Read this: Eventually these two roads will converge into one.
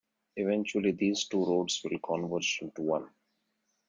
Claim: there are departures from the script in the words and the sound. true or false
false